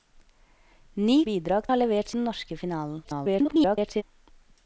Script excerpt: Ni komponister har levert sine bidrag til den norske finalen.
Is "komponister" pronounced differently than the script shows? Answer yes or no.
yes